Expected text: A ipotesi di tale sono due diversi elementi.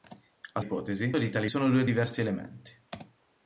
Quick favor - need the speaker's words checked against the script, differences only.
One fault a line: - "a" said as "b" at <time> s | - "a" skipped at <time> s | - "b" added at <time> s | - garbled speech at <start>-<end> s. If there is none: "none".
none